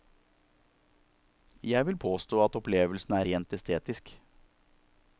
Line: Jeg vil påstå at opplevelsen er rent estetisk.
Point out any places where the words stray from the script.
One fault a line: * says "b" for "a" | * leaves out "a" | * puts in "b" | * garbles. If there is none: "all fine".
all fine